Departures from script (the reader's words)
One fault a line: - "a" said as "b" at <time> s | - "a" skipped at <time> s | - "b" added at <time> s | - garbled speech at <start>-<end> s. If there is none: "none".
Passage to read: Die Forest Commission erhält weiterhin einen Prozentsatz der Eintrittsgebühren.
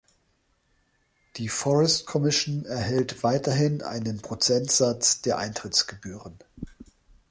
none